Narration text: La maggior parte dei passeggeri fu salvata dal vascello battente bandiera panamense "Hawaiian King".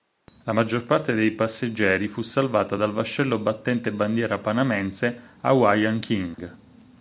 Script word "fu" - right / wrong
right